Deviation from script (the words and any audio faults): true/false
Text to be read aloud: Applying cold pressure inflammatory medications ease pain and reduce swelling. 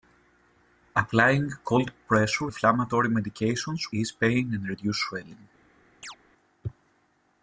true